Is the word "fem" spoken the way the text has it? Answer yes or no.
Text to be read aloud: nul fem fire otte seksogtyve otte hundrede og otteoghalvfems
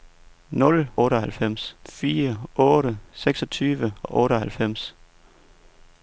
no